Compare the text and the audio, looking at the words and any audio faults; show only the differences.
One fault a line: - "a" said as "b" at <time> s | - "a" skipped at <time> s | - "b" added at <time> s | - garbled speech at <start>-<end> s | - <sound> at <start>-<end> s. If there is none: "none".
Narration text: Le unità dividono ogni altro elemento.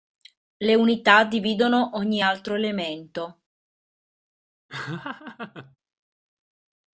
- laugh at 4.7-5.8 s